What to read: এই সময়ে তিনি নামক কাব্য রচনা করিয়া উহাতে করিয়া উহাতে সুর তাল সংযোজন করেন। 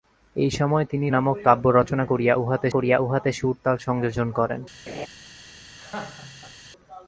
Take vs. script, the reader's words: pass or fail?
pass